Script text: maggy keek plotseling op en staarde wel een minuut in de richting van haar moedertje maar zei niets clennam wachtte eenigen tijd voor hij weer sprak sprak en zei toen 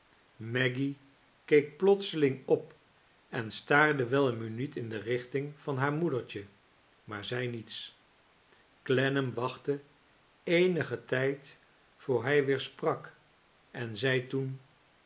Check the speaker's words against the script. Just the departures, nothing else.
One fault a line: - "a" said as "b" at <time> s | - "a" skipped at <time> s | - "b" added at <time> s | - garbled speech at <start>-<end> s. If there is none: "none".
- "sprak" skipped at 13.2 s